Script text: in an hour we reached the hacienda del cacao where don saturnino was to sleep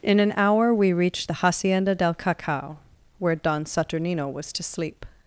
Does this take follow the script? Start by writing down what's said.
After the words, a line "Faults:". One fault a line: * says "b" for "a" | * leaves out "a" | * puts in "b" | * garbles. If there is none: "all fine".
in an hour we reached the hacienda del cacao where don saturnino was to sleep
Faults:
all fine